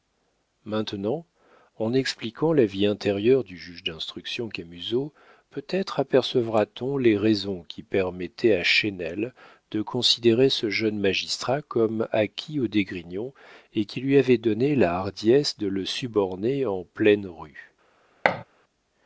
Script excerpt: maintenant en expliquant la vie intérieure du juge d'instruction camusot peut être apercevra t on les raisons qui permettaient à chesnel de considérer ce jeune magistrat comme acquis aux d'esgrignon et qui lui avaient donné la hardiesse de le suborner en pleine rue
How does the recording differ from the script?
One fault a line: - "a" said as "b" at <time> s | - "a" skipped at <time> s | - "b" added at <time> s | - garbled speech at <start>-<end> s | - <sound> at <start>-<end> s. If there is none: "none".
- thud at 18.2-18.4 s